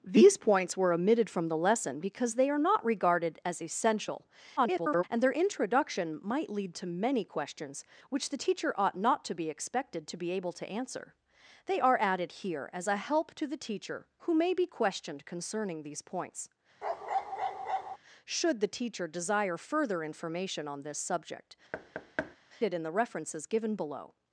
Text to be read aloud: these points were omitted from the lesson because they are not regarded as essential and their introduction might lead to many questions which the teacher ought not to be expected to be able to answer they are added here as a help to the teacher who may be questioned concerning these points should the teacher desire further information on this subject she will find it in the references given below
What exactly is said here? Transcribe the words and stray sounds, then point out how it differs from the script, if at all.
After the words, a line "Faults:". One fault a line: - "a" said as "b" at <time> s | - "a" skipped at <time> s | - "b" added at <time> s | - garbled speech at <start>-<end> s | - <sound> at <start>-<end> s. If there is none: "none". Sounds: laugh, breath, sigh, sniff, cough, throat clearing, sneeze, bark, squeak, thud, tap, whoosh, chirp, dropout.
these points were omitted from the lesson because they are not regarded as essential [garbled] and their introduction might lead to many questions which the teacher ought not to be expected to be able to answer they are added here as a help to the teacher who may be questioned concerning these points should the teacher desire further information on this subject it in the references given below
Faults:
- garbled speech at 4.6-5.0 s
- bark at 16.8-18.0 s
- "she will find" skipped at 21.6 s
- thud at 21.7-22.4 s